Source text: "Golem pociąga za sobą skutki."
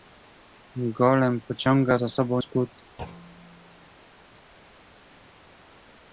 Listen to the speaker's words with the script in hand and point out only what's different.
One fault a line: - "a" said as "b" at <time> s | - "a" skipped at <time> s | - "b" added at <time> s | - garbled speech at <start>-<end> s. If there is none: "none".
none